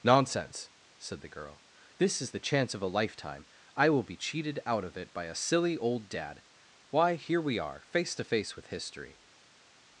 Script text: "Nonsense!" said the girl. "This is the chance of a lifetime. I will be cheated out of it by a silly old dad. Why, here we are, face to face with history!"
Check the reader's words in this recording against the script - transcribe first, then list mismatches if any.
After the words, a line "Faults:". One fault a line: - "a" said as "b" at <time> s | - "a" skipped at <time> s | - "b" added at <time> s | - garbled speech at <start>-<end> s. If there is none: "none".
"Nonsense!" said the girl. "This is the chance of a lifetime. I will be cheated out of it by a silly old dad. Why, here we are, face to face with history!"
Faults:
none